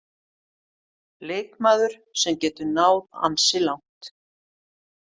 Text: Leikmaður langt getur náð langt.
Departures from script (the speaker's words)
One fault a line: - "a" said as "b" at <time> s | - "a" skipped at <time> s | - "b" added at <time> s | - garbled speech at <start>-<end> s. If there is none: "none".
- "langt" said as "sem" at 2.2 s
- "ansi" added at 3.3 s